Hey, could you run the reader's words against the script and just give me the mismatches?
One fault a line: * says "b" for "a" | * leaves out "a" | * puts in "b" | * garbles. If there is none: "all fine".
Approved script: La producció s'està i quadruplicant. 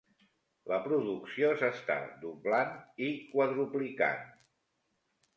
* puts in "doblant"